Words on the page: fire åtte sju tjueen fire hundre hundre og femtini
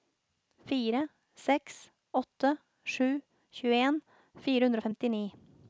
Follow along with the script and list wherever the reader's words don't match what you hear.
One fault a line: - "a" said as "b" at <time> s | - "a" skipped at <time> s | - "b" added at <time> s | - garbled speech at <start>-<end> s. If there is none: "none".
- "seks" added at 1.4 s
- "hundre" skipped at 4.8 s